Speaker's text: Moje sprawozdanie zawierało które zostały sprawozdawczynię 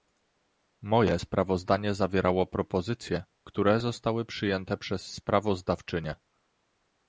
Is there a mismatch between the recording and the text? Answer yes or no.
yes